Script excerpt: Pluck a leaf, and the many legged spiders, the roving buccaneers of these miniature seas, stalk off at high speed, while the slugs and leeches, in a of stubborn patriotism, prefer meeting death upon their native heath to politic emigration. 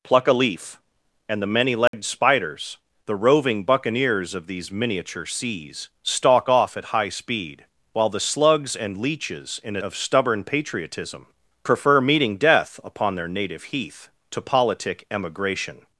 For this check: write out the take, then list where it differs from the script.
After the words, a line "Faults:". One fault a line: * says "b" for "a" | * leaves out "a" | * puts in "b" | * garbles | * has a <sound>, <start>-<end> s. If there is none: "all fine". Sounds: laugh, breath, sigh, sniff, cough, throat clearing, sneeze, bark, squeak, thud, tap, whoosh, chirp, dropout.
Pluck a leaf, and the many legged spiders, the roving buccaneers of these miniature seas, stalk off at high speed, while the slugs and leeches, in a of stubborn patriotism, prefer meeting death upon their native heath to politic emigration.
Faults:
* has a dropout, 1.9-1.9 s